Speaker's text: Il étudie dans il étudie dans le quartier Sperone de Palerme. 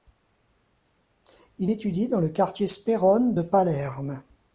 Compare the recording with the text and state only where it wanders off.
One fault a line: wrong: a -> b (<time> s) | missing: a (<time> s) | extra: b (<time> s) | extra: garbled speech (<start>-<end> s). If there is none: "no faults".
missing: il étudie dans (2.2 s)